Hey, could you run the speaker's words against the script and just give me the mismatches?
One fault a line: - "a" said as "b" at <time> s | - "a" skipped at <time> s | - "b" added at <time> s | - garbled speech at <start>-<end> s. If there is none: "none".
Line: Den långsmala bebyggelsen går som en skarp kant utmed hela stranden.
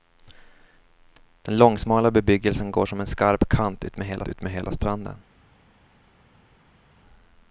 - "utmed hela" added at 4.3 s